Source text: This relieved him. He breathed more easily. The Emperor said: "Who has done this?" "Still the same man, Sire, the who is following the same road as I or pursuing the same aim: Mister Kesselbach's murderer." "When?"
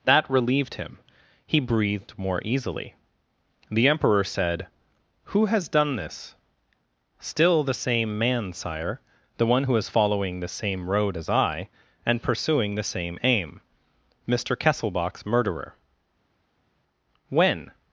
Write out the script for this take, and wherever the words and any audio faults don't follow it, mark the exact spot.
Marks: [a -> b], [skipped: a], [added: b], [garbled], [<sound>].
[This -> That] relieved him. He breathed more easily. The Emperor said: "Who has done this?" "Still the same man, Sire, the [added: one] who is following the same road as I [or -> and] pursuing the same aim: Mister Kesselbach's murderer." "When?"